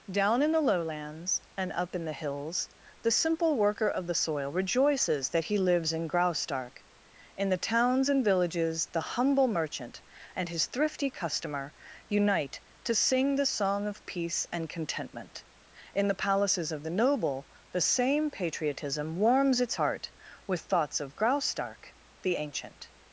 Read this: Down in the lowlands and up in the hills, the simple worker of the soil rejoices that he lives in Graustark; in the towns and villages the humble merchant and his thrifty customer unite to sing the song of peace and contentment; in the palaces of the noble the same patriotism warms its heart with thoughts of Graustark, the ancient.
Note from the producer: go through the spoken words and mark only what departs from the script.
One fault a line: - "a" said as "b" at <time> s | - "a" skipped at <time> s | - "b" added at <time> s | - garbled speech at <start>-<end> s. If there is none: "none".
none